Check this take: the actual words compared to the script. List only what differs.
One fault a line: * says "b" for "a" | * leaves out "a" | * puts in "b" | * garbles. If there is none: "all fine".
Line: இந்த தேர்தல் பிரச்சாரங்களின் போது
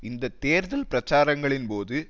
all fine